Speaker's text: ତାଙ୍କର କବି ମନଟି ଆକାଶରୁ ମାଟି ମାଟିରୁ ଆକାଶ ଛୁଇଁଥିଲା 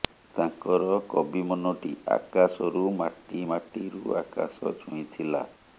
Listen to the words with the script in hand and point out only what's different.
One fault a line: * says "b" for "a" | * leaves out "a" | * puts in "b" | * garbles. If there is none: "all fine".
all fine